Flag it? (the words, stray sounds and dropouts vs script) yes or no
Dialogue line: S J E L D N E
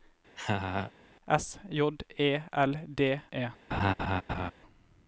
yes